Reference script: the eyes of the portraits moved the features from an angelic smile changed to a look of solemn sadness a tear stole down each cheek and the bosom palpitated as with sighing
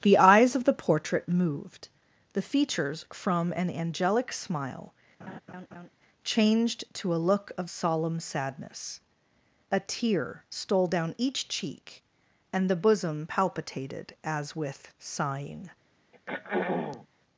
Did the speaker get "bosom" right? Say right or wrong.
right